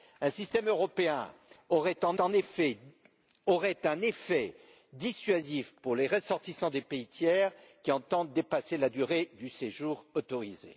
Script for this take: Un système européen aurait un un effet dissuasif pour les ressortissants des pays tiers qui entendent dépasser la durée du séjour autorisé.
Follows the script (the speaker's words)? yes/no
yes